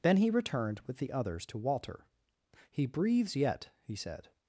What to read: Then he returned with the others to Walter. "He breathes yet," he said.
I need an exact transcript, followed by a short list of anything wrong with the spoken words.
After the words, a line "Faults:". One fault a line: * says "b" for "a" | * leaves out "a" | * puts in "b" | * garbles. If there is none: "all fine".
Then he returned with the others to Walter. "He breathes yet," he said.
Faults:
all fine